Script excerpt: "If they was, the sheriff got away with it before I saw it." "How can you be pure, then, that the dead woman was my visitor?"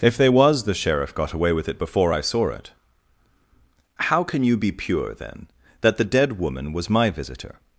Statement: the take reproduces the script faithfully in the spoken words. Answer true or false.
true